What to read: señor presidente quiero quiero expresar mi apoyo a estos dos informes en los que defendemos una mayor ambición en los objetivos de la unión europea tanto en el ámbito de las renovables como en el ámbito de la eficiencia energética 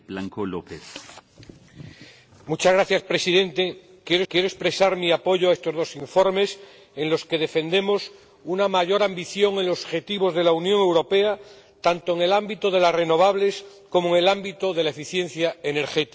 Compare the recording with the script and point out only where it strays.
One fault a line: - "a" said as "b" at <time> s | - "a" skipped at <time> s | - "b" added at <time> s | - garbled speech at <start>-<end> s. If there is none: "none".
none